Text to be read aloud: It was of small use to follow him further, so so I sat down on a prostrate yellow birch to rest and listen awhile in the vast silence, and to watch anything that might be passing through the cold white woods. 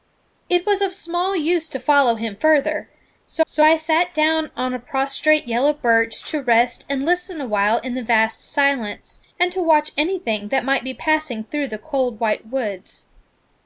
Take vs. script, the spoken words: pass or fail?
pass